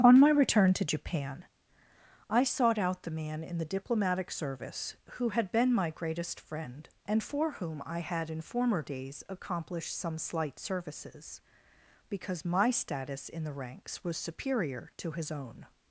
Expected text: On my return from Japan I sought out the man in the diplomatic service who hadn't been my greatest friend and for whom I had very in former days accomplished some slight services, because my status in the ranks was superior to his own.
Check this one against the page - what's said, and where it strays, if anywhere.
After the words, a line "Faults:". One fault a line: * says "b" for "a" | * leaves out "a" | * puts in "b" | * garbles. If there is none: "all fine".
On my return to Japan I sought out the man in the diplomatic service who had been my greatest friend and for whom I had in former days accomplished some slight services, because my status in the ranks was superior to his own.
Faults:
* says "to" for "from"
* says "had" for "hadn't"
* leaves out "very"